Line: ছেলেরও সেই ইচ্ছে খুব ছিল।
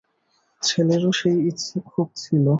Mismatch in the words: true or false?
false